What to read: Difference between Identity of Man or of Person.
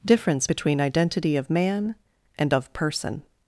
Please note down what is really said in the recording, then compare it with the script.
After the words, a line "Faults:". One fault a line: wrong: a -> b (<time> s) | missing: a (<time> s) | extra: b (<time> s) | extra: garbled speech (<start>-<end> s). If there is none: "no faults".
Difference between Identity of Man and of Person.
Faults:
wrong: or -> and (2.4 s)